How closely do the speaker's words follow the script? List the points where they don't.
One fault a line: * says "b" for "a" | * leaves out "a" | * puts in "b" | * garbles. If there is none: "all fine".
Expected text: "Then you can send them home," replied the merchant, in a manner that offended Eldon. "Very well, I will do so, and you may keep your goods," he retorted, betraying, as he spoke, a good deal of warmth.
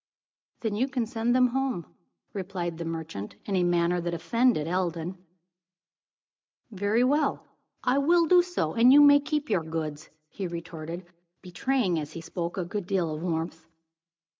all fine